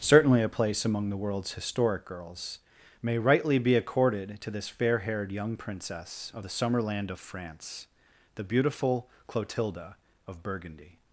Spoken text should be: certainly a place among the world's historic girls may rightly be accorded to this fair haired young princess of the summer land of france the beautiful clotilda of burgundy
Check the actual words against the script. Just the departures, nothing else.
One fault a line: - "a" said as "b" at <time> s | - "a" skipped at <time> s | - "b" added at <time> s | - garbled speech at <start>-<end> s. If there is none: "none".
none